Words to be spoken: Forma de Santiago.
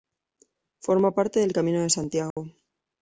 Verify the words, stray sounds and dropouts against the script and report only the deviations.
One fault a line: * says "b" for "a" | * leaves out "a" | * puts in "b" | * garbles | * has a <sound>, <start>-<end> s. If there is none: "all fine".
* puts in "parte del Camino"
* has a dropout, 2.3-2.4 s